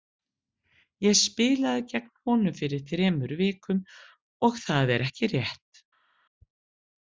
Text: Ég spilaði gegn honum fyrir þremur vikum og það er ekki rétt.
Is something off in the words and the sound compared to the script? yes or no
no